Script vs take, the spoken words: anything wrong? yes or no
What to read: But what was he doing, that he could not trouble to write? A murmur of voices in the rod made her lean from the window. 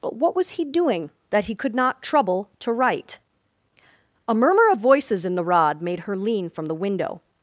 no